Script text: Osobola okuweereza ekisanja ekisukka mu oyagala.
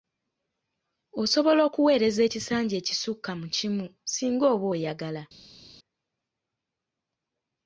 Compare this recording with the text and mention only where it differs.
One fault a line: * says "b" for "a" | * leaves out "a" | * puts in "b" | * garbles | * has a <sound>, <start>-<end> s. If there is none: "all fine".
* puts in "kimu singa oba"